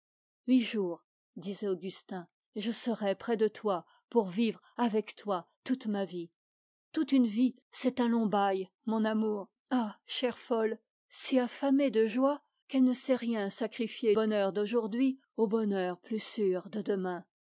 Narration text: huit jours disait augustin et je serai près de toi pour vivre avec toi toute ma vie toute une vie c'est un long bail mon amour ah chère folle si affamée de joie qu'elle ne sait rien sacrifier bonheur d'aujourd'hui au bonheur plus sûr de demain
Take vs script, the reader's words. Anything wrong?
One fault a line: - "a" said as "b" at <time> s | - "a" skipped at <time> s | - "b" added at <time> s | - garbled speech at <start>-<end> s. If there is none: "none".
none